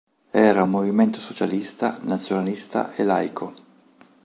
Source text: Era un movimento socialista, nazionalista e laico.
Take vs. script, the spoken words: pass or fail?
pass